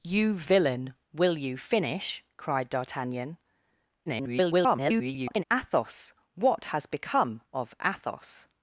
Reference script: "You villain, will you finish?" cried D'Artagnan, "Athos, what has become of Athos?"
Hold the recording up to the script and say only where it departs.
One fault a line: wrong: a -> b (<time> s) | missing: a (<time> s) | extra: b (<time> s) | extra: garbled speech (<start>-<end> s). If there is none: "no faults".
extra: garbled speech (4.1-5.4 s)